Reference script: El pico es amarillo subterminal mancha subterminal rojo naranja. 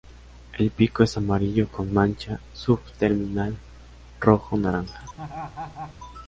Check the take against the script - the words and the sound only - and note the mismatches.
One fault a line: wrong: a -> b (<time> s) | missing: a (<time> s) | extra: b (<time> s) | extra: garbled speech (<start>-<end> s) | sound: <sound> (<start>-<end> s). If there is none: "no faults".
wrong: subterminal -> con (1.7 s)
sound: laugh (5.2-5.9 s)